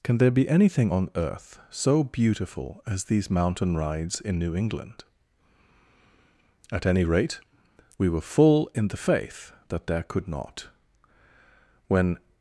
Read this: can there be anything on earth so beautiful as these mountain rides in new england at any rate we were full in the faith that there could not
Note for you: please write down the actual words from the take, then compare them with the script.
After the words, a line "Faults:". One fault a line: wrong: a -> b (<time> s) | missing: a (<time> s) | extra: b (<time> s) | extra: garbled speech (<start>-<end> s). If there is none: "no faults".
can there be anything on earth so beautiful as these mountain rides in new england at any rate we were full in the faith that there could not when
Faults:
extra: when (11.9 s)